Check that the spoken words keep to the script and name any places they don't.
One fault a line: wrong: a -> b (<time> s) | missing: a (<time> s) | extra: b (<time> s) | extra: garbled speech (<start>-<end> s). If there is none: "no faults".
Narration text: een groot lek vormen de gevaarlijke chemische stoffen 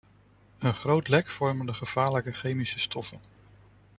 no faults